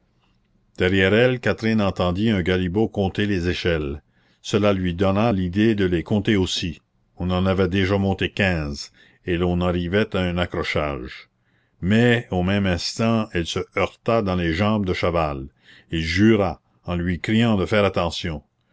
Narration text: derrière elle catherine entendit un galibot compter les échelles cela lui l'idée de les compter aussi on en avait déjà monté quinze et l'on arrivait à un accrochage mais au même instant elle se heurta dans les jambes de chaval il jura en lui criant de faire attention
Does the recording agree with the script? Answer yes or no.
no